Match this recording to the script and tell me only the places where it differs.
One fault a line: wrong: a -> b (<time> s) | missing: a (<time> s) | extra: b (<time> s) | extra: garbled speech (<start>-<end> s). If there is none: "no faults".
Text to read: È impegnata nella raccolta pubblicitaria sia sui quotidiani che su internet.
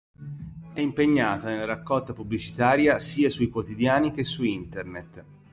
no faults